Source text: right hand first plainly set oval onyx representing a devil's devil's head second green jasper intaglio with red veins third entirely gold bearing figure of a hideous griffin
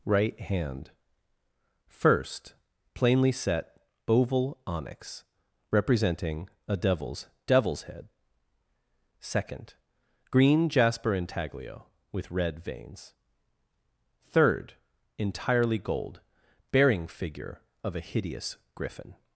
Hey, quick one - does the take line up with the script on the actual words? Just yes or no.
yes